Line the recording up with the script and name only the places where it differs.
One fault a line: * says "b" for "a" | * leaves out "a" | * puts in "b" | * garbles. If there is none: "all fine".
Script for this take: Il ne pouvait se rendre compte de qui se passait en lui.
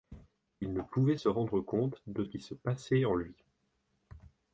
all fine